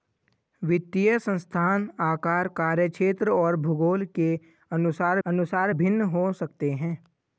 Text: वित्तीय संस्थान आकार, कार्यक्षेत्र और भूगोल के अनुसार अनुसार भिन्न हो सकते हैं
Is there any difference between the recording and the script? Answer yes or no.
no